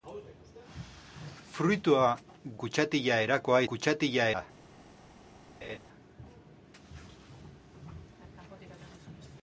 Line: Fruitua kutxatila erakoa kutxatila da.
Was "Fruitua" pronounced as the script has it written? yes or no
yes